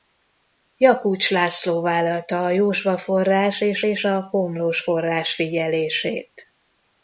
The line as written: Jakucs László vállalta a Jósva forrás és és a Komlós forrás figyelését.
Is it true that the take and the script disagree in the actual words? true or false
false